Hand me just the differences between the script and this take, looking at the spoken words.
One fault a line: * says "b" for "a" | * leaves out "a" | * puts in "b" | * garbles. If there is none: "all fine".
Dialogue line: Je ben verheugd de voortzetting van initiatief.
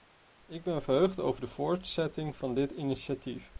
* says "Ik" for "Je"
* puts in "over"
* puts in "dit"